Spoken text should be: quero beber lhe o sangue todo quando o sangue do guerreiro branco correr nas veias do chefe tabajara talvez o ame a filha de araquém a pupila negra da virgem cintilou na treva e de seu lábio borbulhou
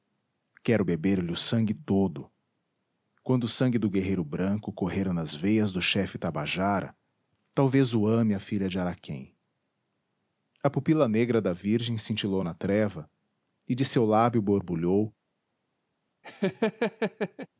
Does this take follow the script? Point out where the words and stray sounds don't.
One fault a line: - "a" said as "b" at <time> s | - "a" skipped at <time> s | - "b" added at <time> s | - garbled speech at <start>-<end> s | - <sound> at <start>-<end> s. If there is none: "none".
- laugh at 16.2-17.5 s